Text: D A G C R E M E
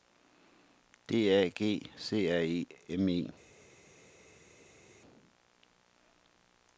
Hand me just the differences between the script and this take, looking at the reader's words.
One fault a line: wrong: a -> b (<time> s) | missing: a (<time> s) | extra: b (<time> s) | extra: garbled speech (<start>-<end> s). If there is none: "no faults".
no faults